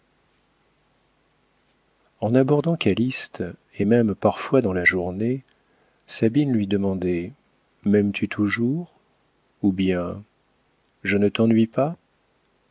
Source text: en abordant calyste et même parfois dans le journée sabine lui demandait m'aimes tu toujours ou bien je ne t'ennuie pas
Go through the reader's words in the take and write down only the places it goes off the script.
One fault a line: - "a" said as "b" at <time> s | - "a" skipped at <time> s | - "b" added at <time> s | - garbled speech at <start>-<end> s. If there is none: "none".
- "le" said as "la" at 4.7 s